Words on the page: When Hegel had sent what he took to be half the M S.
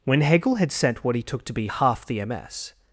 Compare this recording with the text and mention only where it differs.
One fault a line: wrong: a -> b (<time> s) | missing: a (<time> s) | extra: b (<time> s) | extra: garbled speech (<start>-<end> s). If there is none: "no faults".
no faults